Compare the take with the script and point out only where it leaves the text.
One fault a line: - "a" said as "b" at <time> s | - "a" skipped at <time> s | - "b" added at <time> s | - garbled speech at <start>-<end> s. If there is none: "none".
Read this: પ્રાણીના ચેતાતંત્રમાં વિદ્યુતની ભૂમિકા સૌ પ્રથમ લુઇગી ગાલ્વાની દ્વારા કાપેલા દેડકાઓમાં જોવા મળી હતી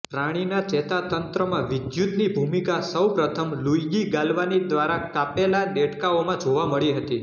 none